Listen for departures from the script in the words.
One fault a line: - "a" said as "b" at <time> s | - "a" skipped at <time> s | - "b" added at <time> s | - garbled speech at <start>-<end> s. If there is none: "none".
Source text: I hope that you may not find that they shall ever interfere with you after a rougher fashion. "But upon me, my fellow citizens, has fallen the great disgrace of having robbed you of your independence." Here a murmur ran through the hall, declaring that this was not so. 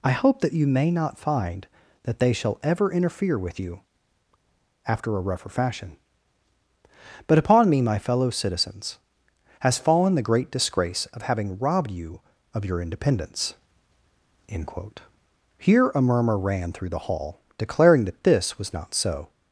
- "end quote" added at 14.5 s